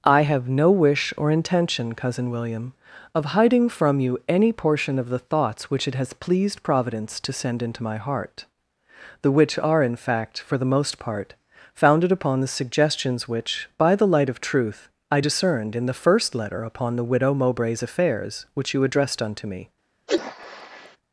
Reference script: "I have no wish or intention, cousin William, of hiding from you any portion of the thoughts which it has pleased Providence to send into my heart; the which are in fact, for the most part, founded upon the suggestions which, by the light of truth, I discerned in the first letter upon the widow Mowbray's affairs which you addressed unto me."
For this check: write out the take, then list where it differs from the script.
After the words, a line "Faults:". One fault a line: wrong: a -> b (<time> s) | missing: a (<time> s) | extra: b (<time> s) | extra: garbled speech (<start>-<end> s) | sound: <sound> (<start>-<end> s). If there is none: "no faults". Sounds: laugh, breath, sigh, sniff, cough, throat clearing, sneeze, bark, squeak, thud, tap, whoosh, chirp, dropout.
"I have no wish or intention, cousin William, of hiding from you any portion of the thoughts which it has pleased Providence to send into my heart; the which are in fact, for the most part, founded upon the suggestions which, by the light of truth, I discerned in the first letter upon the widow Mowbray's affairs which you addressed unto me."
Faults:
sound: sneeze (20.1-21.0 s)